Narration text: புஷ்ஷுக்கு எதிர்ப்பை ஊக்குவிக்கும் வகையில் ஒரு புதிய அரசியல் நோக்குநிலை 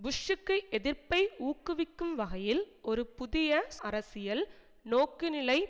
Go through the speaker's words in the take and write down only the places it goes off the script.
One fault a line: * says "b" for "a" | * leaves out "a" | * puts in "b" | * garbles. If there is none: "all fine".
all fine